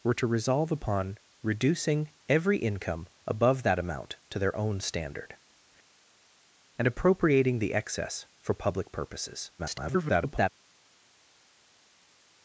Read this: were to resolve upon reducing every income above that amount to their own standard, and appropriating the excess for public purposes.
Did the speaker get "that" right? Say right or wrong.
right